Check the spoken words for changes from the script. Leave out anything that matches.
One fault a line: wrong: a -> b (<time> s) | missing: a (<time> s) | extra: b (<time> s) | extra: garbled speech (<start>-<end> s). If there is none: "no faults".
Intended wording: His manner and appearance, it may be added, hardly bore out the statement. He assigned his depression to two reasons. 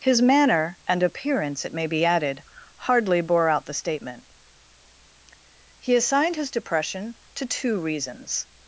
no faults